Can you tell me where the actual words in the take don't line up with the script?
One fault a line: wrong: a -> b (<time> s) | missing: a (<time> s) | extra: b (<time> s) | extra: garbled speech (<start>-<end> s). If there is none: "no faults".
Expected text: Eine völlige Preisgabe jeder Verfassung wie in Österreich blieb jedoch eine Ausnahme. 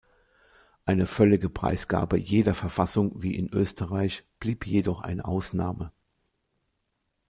no faults